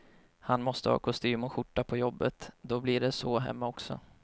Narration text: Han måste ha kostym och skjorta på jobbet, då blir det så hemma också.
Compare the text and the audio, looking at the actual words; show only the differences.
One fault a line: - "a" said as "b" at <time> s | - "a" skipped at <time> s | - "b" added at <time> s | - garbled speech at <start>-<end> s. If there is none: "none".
none